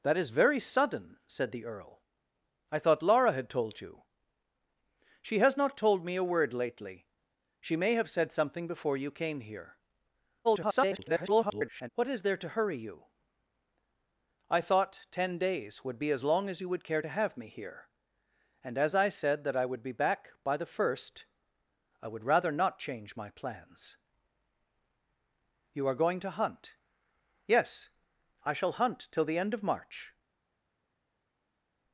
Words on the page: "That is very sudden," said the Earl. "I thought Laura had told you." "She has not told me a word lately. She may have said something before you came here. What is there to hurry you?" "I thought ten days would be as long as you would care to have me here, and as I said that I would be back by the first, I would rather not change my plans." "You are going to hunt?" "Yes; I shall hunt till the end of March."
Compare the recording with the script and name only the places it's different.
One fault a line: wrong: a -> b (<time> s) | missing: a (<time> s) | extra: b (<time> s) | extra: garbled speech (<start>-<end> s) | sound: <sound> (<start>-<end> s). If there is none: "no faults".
extra: garbled speech (10.4-11.9 s)